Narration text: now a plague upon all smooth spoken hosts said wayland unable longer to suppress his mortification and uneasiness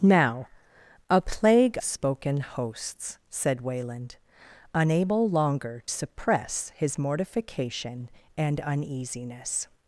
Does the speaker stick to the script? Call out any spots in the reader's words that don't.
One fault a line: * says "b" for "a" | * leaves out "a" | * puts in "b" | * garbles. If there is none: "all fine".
* leaves out "upon all smooth"
* leaves out "to"